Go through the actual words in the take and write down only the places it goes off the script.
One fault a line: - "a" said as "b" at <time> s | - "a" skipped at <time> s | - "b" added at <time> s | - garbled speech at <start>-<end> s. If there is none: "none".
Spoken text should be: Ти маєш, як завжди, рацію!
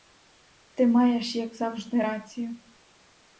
none